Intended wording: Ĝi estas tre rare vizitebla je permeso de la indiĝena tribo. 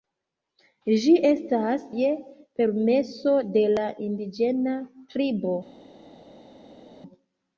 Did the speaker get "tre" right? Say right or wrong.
wrong